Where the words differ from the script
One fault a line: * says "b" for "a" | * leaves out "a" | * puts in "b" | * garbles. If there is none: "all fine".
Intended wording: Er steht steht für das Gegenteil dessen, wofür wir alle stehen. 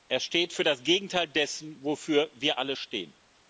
* leaves out "steht"